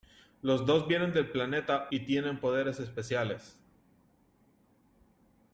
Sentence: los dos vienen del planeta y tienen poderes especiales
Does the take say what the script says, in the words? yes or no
yes